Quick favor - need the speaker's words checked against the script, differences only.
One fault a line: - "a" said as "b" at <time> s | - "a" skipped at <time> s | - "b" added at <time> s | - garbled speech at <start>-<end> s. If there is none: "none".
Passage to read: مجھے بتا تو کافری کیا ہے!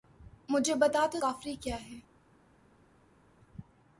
none